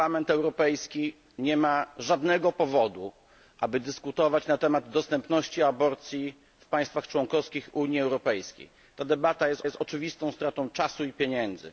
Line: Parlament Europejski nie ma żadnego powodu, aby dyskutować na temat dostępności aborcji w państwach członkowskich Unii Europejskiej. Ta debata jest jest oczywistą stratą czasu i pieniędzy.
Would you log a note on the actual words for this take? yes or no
no